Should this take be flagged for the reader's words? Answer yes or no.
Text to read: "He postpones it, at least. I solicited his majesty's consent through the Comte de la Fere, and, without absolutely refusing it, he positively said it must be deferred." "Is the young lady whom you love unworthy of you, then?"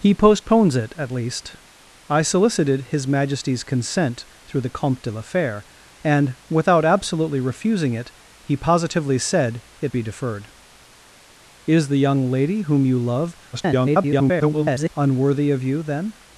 yes